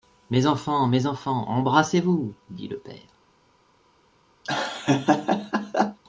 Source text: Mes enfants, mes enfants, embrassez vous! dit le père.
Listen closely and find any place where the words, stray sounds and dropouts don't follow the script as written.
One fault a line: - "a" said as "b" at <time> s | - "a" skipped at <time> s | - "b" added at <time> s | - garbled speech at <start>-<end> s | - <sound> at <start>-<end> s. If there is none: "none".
- laugh at 4.4-6.0 s